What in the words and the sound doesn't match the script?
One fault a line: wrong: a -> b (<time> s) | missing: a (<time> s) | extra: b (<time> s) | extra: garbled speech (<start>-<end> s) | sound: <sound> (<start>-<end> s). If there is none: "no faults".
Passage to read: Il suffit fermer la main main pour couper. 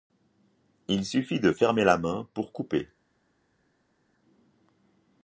extra: de (1.4 s)
missing: main (2.3 s)